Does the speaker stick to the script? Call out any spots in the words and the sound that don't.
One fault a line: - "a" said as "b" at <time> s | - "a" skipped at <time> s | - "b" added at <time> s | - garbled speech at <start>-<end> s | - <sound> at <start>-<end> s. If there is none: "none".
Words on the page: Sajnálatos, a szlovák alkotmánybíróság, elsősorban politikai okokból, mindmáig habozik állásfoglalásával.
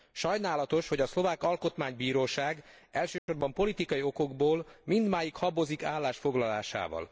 - "hogy" added at 0.9 s
- dropout at 3.2-3.3 s